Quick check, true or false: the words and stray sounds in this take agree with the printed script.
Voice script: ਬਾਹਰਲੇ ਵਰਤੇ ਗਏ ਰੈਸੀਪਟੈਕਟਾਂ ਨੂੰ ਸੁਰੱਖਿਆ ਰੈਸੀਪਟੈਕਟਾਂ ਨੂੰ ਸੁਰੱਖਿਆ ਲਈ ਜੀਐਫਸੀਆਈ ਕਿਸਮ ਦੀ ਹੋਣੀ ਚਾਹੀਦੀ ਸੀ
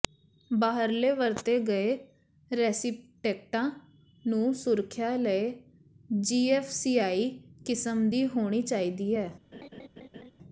false